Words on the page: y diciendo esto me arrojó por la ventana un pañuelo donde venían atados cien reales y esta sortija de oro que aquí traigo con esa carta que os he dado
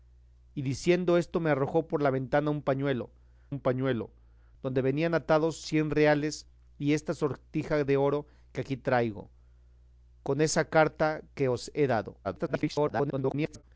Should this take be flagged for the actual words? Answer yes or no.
yes